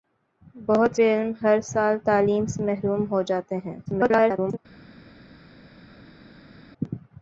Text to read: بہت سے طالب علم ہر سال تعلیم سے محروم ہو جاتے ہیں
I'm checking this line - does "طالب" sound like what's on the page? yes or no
no